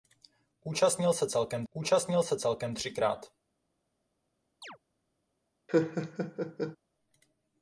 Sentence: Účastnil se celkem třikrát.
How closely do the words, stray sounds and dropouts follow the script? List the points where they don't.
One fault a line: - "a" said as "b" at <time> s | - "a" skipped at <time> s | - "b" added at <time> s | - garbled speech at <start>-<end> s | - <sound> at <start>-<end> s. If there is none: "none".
- "účastnil se celkem" added at 1.7 s
- chirp at 4.6-4.8 s
- laugh at 5.7-6.8 s